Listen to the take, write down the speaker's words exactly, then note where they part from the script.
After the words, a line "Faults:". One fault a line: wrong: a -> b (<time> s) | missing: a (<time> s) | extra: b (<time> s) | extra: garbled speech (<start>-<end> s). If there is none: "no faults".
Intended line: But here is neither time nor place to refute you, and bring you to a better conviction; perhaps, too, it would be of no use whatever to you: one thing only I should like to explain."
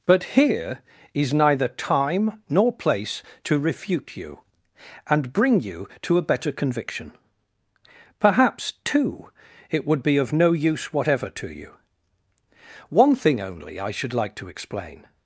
But here is neither time nor place to refute you, and bring you to a better conviction; perhaps, too, it would be of no use whatever to you: one thing only I should like to explain."
Faults:
no faults